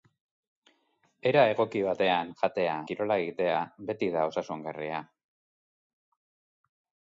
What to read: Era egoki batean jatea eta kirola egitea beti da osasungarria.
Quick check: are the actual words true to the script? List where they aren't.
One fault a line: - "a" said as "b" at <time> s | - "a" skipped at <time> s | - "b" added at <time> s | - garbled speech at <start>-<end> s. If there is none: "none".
- "eta" skipped at 2.8 s